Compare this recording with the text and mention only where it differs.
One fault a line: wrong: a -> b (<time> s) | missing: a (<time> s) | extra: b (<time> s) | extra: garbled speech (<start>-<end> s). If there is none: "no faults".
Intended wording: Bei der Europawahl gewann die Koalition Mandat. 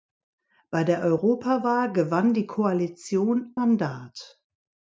no faults